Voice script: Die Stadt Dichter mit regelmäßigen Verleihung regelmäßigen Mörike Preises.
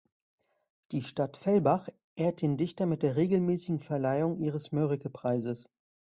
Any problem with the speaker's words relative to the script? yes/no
yes